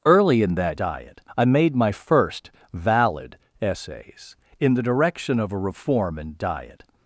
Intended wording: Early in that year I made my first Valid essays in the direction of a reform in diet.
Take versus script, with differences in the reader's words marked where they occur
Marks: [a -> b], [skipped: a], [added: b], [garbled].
Early in that [year -> diet] I made my first Valid essays in the direction of a reform in diet.